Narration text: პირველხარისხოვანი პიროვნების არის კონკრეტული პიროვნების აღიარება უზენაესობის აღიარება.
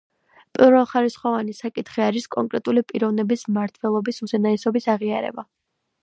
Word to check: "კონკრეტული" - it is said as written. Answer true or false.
true